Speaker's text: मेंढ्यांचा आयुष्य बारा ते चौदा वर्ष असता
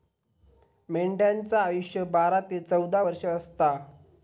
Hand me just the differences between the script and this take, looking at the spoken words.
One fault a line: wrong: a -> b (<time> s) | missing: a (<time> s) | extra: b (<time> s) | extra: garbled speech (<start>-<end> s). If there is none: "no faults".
no faults